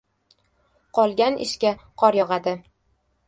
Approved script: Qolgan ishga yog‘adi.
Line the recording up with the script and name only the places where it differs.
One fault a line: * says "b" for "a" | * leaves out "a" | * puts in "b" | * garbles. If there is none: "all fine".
* puts in "qor"